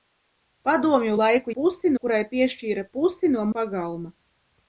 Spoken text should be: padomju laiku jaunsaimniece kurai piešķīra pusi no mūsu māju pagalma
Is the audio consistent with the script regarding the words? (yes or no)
no